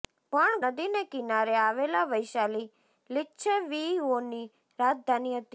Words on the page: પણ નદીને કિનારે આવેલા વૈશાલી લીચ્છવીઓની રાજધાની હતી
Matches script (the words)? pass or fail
pass